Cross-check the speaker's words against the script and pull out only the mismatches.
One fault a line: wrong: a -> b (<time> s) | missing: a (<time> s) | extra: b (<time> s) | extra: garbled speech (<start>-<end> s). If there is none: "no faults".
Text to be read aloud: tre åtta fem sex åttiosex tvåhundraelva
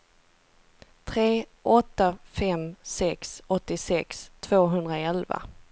no faults